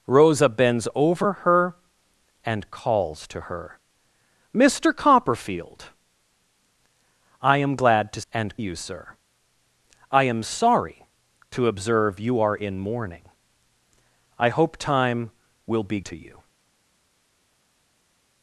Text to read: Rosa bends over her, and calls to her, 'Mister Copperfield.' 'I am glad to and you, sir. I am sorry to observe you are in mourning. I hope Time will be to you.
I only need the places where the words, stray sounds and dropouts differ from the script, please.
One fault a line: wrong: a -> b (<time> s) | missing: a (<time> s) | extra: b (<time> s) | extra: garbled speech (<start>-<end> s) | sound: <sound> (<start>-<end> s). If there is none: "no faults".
no faults